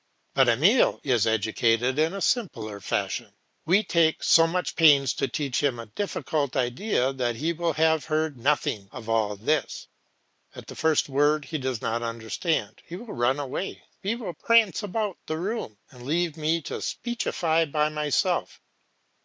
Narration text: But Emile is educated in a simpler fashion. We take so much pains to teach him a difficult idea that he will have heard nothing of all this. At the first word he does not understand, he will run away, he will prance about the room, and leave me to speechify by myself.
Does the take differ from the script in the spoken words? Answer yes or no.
no